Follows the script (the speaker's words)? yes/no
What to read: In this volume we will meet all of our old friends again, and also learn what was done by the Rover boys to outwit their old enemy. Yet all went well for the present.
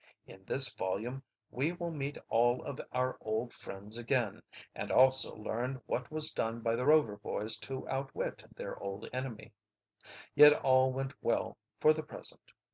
yes